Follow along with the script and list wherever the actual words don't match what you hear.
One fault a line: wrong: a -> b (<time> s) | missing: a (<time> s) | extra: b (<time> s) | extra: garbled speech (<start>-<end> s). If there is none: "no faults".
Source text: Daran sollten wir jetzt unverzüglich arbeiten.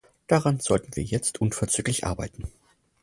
no faults